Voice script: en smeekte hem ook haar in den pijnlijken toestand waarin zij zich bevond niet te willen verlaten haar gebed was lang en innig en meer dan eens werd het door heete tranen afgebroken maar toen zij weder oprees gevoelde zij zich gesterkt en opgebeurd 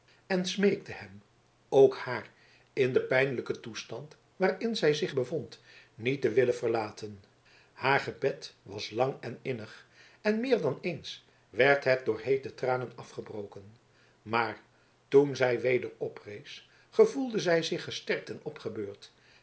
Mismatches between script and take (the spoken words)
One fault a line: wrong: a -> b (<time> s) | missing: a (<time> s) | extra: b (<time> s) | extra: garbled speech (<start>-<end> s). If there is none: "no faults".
no faults